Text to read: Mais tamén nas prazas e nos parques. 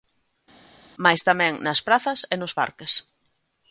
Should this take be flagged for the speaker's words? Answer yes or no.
no